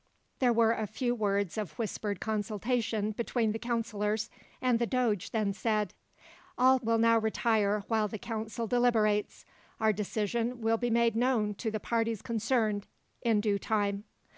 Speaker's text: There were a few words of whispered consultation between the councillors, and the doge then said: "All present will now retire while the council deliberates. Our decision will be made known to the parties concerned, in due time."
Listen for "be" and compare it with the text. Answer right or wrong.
right